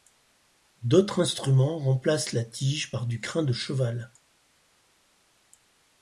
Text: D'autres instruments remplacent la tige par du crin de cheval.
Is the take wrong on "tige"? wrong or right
right